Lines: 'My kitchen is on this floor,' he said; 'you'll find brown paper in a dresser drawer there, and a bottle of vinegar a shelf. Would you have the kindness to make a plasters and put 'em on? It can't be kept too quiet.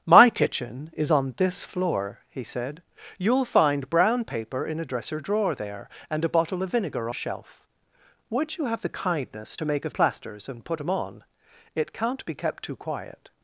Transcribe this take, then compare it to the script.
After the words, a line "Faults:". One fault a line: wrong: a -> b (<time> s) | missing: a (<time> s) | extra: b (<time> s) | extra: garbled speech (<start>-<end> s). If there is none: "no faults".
'My kitchen is on this floor,' he said; 'you'll find brown paper in a dresser drawer there, and a bottle of vinegar a shelf. Would you have the kindness to make a plasters and put 'em on? It can't be kept too quiet.
Faults:
no faults